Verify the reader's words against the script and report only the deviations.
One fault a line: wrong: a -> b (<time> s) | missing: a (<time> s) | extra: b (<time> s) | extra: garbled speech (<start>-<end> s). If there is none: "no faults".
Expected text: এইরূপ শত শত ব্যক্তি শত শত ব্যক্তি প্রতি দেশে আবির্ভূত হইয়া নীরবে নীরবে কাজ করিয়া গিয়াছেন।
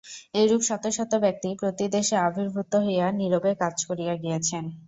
missing: শত শত ব্যক্তি (1.5 s)
missing: নীরবে (3.5 s)